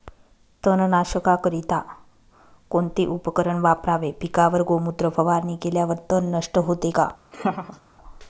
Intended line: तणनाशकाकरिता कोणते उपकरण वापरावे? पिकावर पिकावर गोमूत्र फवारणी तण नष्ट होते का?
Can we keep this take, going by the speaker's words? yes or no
no